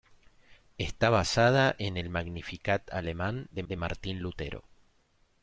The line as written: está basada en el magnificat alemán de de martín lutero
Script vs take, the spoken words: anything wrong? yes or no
no